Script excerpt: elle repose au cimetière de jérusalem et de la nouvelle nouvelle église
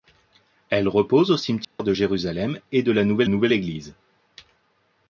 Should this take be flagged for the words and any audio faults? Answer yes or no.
yes